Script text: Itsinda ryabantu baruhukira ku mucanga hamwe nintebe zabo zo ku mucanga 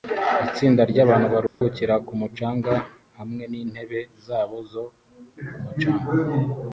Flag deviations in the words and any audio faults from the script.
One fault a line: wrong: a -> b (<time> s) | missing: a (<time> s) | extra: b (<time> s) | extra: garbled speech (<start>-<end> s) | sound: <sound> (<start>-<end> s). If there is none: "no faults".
sound: dropout (1.5-1.6 s)